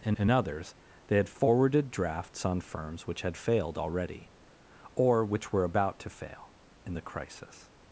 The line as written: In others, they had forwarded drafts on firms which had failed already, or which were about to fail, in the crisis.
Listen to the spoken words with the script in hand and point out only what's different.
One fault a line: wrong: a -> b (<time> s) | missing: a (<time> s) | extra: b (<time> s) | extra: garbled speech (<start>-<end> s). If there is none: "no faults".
extra: in (0.1 s)